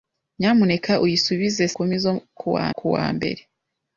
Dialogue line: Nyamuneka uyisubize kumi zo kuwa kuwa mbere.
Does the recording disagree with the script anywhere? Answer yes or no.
no